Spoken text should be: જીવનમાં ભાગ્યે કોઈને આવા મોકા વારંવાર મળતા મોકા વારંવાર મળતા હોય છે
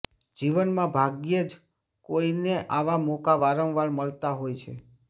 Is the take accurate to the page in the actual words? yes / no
no